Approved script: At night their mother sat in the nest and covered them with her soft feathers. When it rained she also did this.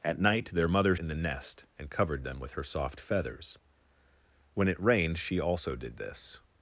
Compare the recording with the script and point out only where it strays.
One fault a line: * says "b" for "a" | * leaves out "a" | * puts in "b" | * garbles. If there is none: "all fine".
* leaves out "sat"